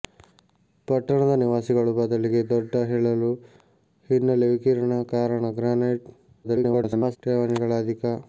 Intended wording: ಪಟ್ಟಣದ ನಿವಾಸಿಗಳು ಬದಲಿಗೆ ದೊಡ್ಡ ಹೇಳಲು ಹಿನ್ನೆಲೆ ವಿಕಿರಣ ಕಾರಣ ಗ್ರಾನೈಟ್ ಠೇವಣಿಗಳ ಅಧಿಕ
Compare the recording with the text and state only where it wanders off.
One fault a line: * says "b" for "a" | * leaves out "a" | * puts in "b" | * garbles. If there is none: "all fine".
* garbles